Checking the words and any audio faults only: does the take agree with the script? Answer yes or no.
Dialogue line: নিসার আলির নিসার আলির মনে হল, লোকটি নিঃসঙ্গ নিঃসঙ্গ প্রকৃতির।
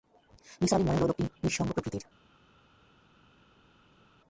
no